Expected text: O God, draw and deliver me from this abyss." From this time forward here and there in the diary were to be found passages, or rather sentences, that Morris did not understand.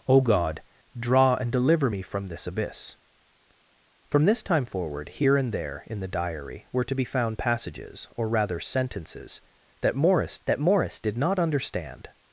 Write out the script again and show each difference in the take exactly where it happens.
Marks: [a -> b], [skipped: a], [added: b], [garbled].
O God, draw and deliver me from this abyss." From this time forward here and there in the diary were to be found passages, or rather sentences, that Morris [added: that Morris] did not understand.